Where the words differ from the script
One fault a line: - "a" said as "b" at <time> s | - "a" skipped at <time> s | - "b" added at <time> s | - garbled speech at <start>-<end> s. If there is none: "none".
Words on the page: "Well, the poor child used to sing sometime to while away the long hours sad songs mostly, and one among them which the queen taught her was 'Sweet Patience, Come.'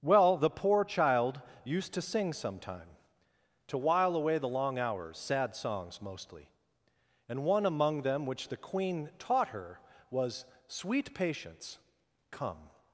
none